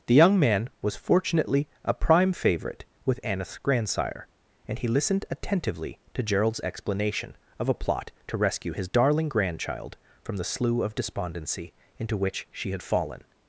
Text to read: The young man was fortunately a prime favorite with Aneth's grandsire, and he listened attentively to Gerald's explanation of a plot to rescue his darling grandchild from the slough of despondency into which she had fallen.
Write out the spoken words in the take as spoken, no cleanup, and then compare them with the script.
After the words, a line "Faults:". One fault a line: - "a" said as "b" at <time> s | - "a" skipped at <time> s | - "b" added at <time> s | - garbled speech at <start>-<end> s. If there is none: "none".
The young man was fortunately a prime favorite with Aneth's grandsire, and he listened attentively to Gerald's explanation of a plot to rescue his darling grandchild from the slough of despondency into which she had fallen.
Faults:
none